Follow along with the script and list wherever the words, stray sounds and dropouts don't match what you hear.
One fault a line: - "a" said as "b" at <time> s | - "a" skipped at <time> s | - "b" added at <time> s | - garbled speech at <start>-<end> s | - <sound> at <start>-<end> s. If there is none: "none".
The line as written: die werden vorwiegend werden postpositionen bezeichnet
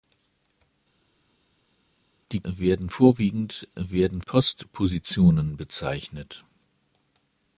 none